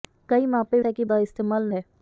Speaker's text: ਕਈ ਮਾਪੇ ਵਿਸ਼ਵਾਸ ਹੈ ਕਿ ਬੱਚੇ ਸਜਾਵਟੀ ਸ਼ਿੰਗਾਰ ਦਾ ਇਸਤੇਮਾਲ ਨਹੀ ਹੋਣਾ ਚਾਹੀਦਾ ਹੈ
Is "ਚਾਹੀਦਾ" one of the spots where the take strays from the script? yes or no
yes